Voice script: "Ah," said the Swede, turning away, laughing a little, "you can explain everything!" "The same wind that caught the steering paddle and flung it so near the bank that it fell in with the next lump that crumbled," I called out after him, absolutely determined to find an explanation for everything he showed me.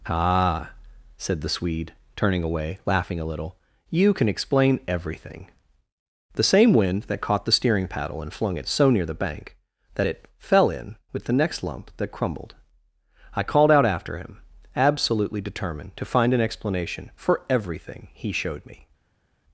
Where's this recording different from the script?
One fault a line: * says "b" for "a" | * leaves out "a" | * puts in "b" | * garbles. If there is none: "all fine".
all fine